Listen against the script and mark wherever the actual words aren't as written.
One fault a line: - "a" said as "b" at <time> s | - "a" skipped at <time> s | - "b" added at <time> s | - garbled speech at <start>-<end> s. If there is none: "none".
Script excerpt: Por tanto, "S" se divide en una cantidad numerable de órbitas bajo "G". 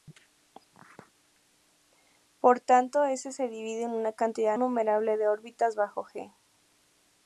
none